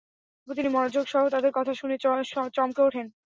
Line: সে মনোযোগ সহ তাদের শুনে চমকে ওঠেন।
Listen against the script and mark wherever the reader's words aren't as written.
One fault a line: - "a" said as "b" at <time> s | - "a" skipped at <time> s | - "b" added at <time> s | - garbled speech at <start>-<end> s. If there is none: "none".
- "সে" said as "তিনি" at 0.5 s
- "কথা" added at 1.5 s